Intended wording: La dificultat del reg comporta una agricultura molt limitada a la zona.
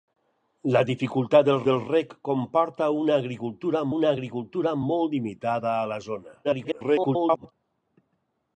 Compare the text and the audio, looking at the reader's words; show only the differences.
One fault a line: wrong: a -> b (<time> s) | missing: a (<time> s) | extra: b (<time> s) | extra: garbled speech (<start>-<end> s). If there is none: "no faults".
extra: del (1.7 s)
extra: una agricultura (3.9 s)
extra: garbled speech (6.4-7.5 s)